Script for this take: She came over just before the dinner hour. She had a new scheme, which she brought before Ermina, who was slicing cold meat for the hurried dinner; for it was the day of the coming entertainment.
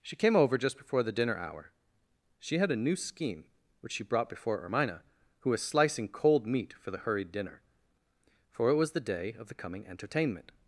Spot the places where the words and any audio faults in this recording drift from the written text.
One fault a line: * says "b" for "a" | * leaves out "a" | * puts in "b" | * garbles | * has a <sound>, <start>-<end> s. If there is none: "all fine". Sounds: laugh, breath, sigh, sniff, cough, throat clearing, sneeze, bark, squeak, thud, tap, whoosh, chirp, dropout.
all fine